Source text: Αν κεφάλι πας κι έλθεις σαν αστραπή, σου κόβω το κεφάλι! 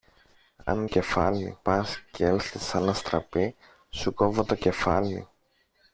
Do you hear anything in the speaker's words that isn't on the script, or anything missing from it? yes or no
no